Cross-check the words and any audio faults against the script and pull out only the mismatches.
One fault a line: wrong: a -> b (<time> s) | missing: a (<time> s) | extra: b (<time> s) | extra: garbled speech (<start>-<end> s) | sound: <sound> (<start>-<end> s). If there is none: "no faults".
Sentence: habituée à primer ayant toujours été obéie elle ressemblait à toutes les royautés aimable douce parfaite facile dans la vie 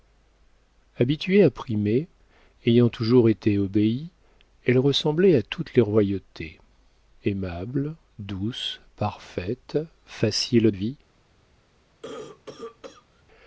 missing: dans la (10.7 s)
sound: cough (12.0-13.2 s)